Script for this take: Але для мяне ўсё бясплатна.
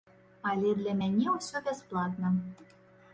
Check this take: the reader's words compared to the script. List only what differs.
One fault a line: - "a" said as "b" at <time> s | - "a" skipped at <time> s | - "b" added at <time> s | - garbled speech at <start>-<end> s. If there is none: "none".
none